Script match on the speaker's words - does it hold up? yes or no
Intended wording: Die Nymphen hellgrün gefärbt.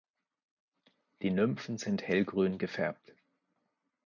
no